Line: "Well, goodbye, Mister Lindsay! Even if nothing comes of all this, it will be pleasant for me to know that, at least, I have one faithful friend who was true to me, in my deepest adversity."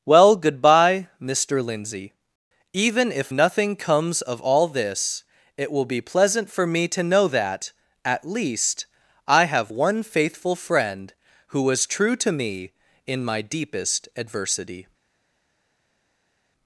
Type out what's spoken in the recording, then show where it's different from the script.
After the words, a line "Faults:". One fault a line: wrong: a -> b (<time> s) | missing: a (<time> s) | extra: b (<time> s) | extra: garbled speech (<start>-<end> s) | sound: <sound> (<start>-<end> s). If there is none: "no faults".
"Well, goodbye, Mister Lindsay! Even if nothing comes of all this, it will be pleasant for me to know that, at least, I have one faithful friend who was true to me, in my deepest adversity."
Faults:
no faults